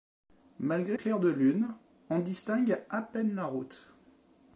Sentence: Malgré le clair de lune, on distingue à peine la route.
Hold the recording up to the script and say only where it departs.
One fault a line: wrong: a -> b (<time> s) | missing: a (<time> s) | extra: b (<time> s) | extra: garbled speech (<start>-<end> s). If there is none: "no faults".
missing: le (1.0 s)